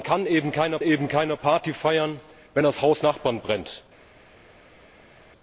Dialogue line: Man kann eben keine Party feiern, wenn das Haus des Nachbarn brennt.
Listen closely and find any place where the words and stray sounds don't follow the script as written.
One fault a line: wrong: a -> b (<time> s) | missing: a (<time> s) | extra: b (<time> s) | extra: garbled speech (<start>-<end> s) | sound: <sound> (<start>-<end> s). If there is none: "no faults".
extra: eben keine (0.8 s)
missing: des (3.0 s)